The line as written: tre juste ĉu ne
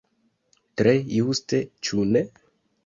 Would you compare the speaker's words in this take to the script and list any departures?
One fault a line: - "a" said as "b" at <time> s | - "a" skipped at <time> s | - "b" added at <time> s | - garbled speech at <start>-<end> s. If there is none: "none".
none